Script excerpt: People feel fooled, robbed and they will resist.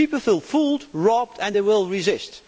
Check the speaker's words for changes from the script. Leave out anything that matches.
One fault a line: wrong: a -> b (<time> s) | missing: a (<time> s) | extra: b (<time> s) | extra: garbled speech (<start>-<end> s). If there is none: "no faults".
no faults